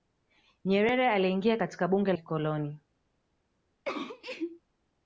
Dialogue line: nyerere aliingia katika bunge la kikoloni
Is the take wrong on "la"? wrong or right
wrong